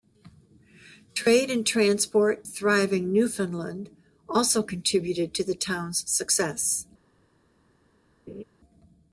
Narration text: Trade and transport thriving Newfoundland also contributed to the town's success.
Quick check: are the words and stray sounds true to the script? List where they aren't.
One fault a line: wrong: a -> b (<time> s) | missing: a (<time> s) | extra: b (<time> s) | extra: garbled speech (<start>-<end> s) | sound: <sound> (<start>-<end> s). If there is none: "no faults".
sound: laugh (8.3-8.4 s)